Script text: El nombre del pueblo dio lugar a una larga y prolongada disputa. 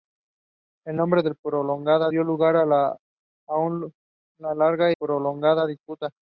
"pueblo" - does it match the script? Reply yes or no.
no